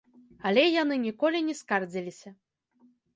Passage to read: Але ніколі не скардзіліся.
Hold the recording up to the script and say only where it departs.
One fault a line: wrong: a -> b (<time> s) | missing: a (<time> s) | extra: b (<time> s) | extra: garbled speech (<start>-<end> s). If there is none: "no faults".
extra: яны (0.8 s)